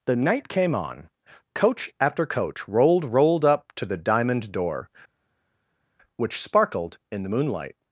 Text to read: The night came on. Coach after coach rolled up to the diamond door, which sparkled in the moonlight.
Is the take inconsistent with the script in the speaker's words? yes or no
yes